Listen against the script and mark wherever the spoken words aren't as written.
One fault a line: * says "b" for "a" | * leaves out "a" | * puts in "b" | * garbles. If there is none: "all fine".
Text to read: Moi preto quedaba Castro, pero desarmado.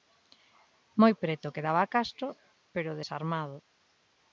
all fine